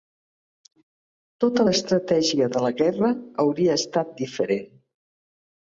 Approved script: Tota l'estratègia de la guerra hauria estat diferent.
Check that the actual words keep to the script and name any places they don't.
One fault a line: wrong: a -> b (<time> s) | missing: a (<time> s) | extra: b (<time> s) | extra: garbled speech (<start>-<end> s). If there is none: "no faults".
no faults